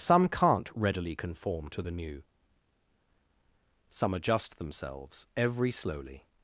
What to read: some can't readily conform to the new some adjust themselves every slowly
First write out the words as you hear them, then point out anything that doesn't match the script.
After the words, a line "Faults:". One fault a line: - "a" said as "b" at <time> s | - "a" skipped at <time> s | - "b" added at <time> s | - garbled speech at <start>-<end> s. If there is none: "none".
some can't readily conform to the new some adjust themselves every slowly
Faults:
none